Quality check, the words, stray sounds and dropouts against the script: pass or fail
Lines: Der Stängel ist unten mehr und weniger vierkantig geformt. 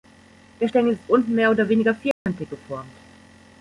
fail